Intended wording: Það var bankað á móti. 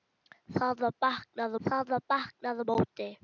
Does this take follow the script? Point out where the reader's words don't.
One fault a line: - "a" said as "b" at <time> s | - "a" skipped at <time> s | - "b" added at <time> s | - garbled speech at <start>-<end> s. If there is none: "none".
- "það var bankað" added at 1.7 s